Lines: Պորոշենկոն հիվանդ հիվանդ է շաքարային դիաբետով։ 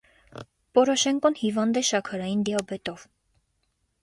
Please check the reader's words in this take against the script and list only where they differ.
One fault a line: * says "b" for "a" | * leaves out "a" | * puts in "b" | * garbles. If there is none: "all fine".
* leaves out "հիվանդ"